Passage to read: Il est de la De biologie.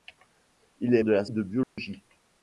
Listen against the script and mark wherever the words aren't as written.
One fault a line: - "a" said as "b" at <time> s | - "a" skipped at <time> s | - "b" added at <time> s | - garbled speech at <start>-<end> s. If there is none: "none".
none